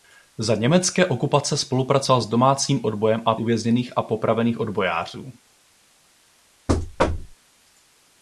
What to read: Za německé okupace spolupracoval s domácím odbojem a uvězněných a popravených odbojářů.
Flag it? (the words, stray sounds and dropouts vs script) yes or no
yes